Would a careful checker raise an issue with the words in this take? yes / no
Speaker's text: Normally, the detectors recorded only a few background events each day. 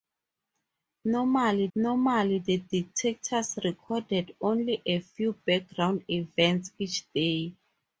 yes